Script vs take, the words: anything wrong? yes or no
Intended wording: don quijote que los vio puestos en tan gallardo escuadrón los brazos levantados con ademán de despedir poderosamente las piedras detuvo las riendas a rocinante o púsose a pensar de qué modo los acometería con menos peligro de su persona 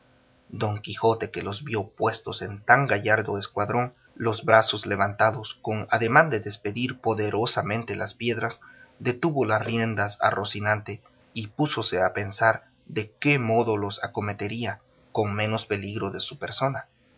yes